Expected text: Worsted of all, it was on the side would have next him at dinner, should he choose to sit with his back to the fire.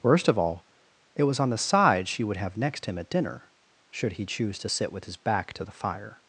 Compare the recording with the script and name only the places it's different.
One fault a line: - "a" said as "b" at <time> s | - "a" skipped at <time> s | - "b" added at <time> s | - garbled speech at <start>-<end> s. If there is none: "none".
- "Worsted" said as "Worst" at 0.0 s
- "she" added at 2.1 s